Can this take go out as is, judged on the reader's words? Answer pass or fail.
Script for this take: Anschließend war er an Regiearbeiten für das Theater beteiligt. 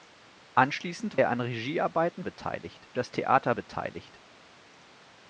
fail